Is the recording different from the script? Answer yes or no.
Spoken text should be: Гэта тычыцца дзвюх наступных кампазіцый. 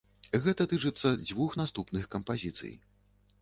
no